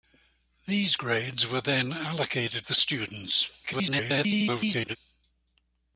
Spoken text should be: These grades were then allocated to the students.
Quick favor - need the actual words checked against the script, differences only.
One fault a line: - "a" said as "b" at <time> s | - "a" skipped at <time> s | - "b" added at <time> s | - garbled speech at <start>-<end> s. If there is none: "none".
- "to" skipped at 2.6 s
- garbled speech at 3.6-5.0 s